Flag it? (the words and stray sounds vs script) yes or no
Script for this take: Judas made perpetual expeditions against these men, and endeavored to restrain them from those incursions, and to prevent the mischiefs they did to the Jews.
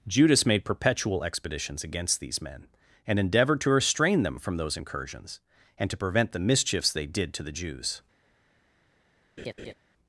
yes